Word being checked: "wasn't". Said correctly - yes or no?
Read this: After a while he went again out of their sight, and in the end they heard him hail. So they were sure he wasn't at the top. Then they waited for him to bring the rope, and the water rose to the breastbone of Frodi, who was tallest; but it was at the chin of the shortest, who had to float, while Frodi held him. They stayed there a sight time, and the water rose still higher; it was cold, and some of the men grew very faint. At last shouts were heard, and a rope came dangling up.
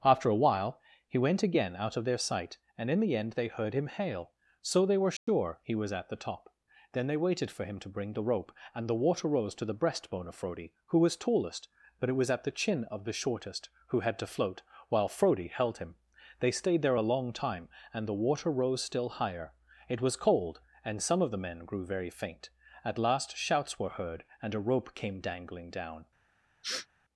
no